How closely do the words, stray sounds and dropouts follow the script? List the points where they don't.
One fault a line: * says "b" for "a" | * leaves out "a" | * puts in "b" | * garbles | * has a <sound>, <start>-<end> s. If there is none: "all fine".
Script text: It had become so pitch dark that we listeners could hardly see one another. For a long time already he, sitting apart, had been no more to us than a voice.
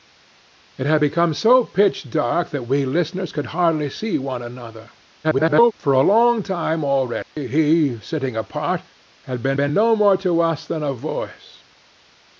* garbles
* has a dropout, 7.2-7.4 s
* puts in "been"